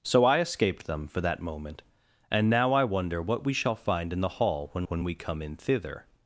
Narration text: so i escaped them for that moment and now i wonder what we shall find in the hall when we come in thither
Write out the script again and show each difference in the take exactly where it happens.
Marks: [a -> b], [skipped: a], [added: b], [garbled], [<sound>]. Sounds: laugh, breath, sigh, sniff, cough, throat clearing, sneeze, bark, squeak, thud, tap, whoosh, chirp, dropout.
so i escaped them for that moment and now i wonder what we shall find in the hall when [added: when] we come in thither